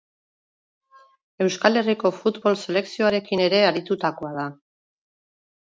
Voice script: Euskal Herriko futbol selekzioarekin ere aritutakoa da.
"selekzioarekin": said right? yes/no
yes